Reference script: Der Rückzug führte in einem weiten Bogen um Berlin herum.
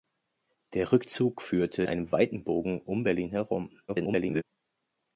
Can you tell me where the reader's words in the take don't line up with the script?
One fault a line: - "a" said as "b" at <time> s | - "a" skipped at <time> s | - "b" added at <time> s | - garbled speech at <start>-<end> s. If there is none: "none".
- "in" skipped at 1.8 s
- garbled speech at 3.9-4.4 s